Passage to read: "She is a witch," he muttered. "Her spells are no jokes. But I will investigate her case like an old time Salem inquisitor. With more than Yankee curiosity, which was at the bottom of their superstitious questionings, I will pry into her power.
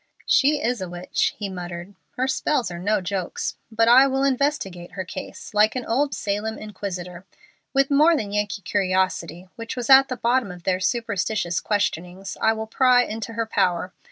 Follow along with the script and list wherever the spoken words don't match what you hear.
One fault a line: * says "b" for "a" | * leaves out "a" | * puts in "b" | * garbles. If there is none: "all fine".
* leaves out "time"